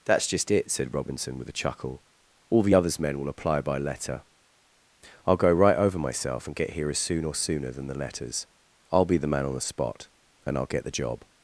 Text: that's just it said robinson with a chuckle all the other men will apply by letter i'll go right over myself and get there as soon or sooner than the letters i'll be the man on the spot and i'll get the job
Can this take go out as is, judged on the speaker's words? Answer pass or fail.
fail